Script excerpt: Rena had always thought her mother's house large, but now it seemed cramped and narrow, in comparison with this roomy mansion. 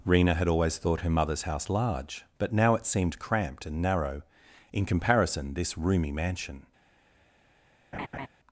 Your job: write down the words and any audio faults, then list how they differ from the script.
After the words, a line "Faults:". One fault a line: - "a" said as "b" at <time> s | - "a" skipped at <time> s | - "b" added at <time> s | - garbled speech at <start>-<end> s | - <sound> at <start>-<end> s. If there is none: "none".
Rena had always thought her mother's house large, but now it seemed cramped and narrow, in comparison this roomy mansion.
Faults:
- "with" skipped at 5.5 s
- laugh at 7.9-8.3 s